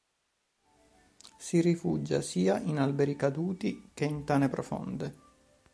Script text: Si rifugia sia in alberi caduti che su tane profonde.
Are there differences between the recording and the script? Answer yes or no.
yes